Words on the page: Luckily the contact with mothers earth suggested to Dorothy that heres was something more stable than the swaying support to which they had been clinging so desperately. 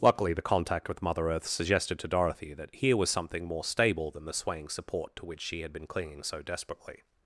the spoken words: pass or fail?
fail